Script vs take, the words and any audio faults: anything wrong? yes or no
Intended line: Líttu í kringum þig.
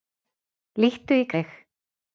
yes